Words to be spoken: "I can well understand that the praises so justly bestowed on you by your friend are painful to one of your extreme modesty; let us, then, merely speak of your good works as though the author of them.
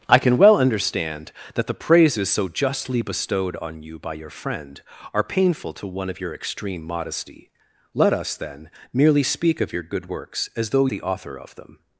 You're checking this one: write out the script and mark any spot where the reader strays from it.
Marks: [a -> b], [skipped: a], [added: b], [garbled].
"I can well understand that the praises so justly bestowed on you by your friend are painful to one of your extreme modesty; let us, then, merely speak of your good works as though the author of them.